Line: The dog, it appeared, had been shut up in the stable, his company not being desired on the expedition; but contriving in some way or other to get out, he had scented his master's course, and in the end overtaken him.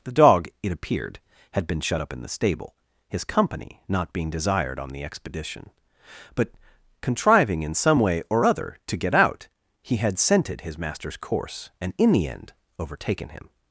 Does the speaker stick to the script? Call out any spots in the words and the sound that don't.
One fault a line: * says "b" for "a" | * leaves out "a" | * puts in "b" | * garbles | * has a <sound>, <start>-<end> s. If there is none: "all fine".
all fine